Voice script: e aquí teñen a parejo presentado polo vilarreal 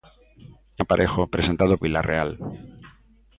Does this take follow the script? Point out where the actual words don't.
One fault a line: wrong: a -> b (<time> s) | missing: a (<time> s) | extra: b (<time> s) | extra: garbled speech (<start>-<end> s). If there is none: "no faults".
missing: aquí teñen (0.8 s)
missing: polo (1.7 s)